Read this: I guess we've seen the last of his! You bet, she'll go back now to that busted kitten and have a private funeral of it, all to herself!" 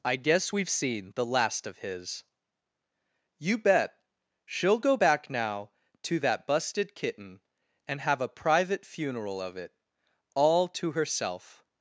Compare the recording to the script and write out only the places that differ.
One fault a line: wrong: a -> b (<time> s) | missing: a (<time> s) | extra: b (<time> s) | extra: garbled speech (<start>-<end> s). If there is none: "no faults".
no faults